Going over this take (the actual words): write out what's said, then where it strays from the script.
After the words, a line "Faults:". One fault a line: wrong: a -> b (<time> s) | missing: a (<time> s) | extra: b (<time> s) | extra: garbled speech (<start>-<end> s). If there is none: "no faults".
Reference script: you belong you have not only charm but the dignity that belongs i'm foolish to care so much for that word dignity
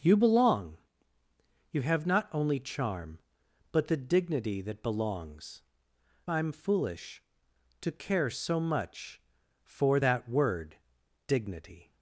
you belong you have not only charm but the dignity that belongs i'm foolish to care so much for that word dignity
Faults:
no faults